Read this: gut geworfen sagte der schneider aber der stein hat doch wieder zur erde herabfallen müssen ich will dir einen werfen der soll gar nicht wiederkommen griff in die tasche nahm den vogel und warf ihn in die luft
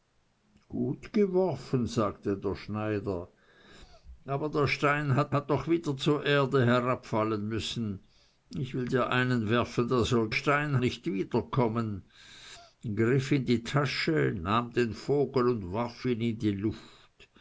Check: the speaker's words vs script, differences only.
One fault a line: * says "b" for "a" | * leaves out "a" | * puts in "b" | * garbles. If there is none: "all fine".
* puts in "hat"
* says "stein" for "gar"